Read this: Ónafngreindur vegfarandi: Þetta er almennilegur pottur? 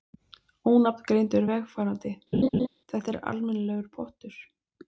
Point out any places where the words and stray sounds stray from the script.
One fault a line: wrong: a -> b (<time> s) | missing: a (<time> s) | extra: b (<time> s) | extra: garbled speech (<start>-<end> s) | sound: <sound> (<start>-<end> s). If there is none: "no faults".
sound: laugh (2.3-2.7 s)